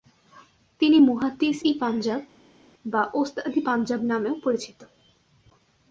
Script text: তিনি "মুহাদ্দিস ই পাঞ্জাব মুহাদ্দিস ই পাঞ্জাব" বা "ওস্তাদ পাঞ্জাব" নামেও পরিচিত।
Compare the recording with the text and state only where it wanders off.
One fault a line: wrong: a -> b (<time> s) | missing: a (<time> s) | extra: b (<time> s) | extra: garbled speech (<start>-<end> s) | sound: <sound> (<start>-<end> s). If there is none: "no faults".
missing: মুহাদ্দিস ই পাঞ্জাব (2.2 s)
extra: ই (3.5 s)